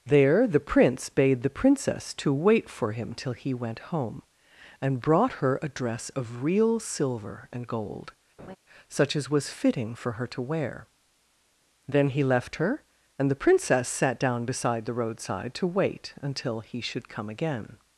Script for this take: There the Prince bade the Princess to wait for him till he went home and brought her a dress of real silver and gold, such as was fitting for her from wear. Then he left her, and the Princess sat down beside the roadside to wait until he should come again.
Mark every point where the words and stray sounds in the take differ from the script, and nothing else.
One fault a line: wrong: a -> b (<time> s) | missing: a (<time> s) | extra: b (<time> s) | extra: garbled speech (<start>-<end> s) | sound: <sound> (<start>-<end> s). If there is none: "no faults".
sound: laugh (8.4-8.6 s)
wrong: from -> to (10.3 s)